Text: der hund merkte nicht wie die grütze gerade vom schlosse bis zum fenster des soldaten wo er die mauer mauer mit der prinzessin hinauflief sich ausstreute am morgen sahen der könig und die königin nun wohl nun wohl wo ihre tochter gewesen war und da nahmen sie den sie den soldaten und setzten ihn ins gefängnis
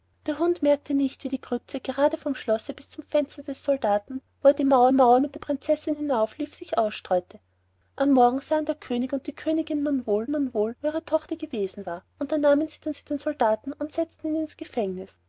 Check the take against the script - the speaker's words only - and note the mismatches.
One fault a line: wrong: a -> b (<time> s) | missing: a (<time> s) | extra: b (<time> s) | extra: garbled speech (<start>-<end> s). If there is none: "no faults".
no faults